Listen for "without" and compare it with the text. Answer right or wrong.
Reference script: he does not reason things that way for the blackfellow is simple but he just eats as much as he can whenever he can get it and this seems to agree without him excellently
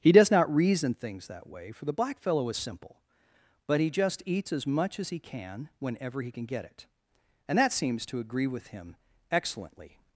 wrong